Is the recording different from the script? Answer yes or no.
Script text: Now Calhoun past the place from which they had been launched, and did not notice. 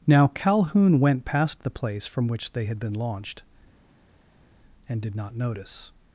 yes